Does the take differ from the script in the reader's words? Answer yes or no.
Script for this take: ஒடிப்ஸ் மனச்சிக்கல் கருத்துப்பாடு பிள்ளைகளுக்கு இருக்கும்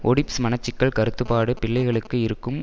no